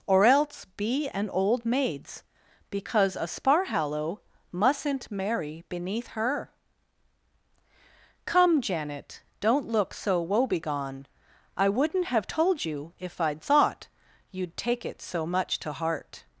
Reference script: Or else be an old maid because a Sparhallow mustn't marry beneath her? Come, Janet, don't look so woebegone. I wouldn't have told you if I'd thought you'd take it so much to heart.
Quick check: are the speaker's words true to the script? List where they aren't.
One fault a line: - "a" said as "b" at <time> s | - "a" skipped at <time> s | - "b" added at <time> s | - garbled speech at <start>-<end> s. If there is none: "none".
- "maid" said as "maids" at 1.6 s